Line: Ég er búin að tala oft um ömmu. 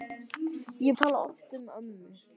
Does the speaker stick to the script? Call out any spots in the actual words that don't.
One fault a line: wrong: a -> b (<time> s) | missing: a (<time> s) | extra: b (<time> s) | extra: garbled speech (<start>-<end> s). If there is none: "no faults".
missing: búin (1.0 s)